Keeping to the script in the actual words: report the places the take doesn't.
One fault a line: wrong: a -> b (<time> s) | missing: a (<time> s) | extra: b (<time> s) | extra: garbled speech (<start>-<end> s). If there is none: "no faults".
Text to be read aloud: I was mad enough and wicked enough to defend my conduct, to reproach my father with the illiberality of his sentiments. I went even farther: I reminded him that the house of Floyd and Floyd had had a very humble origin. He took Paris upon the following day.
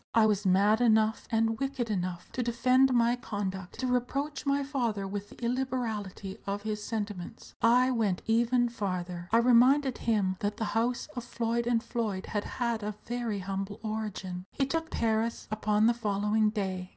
no faults